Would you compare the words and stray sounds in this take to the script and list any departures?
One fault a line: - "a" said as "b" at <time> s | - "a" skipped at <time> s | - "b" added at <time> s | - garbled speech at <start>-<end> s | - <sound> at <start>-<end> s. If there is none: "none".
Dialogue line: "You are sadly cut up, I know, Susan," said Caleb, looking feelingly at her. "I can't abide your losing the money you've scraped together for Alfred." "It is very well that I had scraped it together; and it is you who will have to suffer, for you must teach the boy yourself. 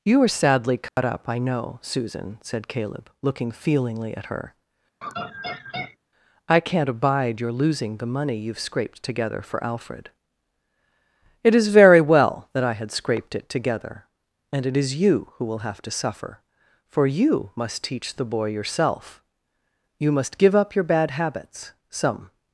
- dropout at 0.9-1.0 s
- laugh at 5.0-6.0 s
- "You must give up your bad habits Some" added at 20.0 s